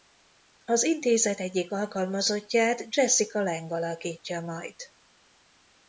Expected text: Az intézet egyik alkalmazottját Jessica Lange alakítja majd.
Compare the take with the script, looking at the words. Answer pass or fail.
pass